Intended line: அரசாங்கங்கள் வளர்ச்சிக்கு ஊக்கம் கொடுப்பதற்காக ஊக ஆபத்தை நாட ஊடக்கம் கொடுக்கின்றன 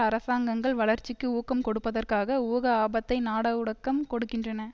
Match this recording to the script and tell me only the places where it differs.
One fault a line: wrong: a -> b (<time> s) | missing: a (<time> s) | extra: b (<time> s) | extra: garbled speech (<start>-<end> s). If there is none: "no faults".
no faults